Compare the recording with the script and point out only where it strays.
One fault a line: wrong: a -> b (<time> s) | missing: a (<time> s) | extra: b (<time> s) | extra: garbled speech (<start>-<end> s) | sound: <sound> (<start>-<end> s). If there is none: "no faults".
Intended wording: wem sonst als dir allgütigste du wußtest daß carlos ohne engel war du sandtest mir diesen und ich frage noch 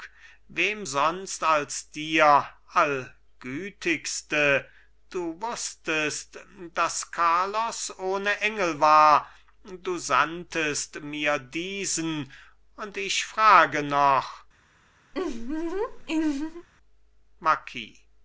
sound: laugh (15.1-16.7 s)